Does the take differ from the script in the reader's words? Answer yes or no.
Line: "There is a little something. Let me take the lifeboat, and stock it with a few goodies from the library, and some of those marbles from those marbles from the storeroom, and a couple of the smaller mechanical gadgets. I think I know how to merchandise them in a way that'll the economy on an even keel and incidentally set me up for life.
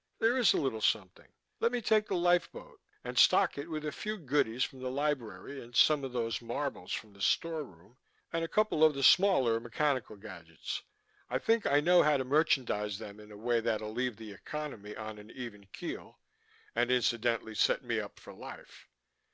yes